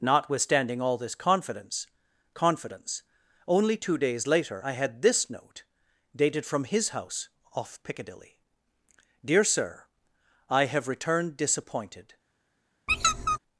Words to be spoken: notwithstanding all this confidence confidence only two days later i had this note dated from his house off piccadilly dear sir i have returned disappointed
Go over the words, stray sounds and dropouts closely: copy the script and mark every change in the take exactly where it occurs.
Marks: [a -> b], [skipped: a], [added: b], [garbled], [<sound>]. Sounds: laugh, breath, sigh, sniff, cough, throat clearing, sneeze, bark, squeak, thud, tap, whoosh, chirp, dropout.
notwithstanding all this confidence confidence only two days later i had this note dated from his house off piccadilly dear sir i have returned disappointed [squeak]